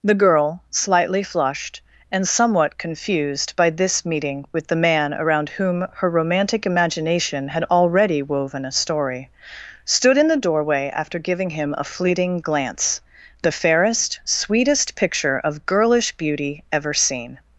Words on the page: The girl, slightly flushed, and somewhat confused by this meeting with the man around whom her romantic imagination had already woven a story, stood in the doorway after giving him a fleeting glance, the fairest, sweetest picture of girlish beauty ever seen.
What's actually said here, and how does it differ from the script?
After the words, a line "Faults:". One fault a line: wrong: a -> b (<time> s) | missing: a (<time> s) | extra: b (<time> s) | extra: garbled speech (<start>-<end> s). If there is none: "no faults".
The girl, slightly flushed, and somewhat confused by this meeting with the man around whom her romantic imagination had already woven a story, stood in the doorway after giving him a fleeting glance, the fairest, sweetest picture of girlish beauty ever seen.
Faults:
no faults